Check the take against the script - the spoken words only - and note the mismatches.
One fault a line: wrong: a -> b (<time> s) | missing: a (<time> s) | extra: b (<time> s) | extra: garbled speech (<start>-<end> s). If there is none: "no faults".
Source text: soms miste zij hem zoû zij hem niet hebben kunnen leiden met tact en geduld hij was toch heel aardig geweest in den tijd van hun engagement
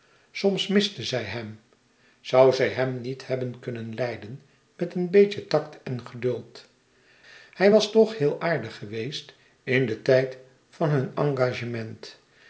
extra: een beetje (5.0 s)